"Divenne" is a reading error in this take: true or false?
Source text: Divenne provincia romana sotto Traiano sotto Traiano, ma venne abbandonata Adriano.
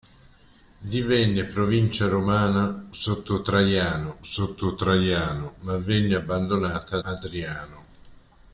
false